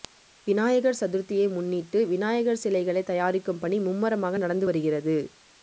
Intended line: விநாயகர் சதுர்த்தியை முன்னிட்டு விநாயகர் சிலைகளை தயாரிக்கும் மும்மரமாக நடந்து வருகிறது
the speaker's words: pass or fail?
fail